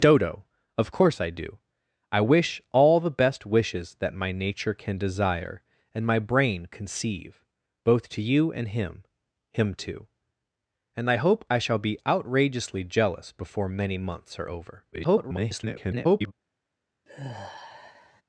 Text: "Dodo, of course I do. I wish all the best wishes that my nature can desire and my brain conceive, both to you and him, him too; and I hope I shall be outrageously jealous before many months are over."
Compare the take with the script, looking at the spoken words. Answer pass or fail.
fail